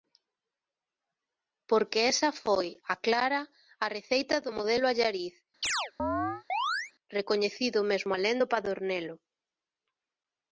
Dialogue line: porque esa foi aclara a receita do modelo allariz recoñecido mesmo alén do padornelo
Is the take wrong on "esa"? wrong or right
right